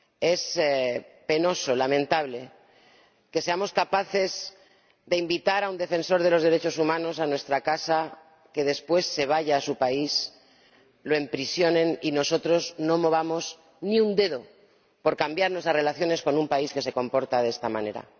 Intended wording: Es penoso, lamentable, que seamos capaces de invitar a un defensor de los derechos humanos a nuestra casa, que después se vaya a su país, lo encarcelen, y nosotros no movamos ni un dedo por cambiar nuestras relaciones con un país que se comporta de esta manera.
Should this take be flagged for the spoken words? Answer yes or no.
no